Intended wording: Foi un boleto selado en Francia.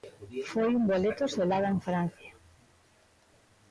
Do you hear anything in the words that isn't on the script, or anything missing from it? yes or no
no